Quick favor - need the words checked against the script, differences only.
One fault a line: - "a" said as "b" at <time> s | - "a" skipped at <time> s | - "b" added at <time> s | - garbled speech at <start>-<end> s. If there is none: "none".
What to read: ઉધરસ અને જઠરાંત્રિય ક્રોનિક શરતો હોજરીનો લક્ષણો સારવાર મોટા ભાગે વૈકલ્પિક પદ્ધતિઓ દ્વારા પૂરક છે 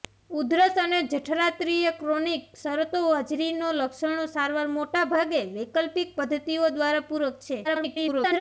- garbled speech at 7.6-8.4 s